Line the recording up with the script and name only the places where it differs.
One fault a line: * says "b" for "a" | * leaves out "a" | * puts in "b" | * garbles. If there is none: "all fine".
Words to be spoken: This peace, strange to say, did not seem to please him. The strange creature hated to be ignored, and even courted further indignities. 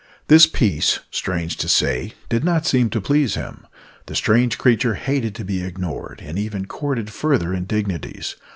all fine